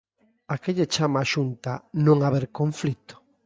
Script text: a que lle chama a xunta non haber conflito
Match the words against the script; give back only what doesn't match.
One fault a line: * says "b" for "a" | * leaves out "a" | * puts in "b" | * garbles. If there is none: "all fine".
all fine